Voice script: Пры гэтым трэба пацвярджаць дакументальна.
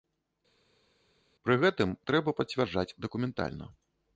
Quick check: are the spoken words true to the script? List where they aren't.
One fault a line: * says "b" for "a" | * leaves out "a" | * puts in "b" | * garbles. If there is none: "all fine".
all fine